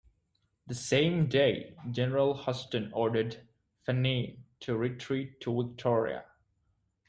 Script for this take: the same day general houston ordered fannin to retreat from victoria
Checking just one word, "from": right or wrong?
wrong